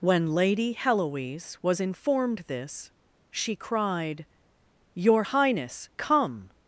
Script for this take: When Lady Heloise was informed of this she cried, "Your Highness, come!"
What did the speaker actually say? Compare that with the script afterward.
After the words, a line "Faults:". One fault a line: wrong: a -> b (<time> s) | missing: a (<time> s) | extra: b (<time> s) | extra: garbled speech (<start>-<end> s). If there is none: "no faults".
When Lady Heloise was informed this she cried, "Your Highness, come!"
Faults:
missing: of (2.4 s)